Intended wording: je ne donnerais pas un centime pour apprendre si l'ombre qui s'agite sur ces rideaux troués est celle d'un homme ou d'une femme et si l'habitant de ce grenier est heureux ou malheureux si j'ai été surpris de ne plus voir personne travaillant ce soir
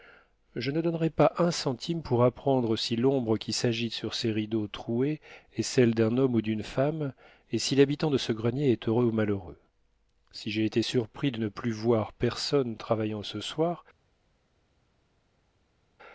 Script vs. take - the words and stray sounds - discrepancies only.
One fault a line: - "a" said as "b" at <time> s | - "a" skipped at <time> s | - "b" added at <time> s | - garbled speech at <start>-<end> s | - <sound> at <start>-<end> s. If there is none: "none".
none